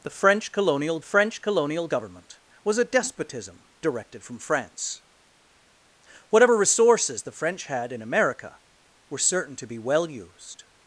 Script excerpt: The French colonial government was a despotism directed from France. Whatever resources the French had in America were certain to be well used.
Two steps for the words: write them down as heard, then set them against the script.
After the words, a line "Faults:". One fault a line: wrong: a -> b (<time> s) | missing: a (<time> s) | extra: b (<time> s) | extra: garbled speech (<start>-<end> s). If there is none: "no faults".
The French colonial French colonial government was a despotism directed from France. Whatever resources the French had in America were certain to be well used.
Faults:
extra: French colonial (1.0 s)